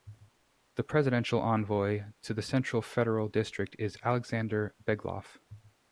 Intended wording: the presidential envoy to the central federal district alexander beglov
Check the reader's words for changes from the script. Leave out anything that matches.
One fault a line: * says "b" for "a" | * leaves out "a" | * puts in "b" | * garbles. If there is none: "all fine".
* puts in "is"